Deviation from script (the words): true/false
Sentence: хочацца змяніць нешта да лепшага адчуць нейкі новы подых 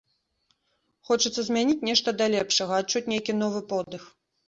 false